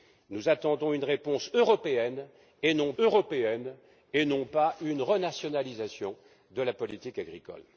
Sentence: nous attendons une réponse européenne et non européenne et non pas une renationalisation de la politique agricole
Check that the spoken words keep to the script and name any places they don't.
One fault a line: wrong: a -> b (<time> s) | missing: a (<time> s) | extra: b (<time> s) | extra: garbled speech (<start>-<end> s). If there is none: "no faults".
no faults